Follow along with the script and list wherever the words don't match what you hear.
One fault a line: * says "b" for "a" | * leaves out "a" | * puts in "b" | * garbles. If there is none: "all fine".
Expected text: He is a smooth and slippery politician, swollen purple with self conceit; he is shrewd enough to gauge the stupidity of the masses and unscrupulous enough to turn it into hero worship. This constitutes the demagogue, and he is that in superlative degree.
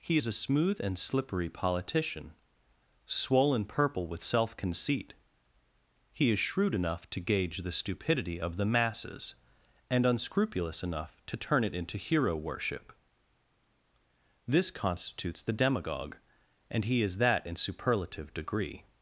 all fine